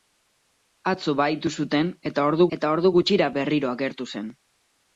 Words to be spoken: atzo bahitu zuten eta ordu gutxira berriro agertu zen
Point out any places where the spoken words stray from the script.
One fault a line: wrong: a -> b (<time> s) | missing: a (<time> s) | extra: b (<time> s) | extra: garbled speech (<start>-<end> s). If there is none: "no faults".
extra: eta ordu (2.6 s)